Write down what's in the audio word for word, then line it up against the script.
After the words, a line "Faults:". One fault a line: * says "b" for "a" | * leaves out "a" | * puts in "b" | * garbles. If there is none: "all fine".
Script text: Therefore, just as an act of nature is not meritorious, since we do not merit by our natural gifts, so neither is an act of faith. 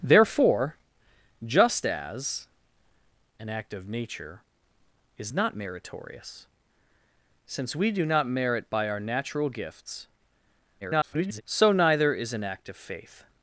Therefore, just as an act of nature is not meritorious, since we do not merit by our natural gifts, [garbled] so neither is an act of faith.
Faults:
* garbles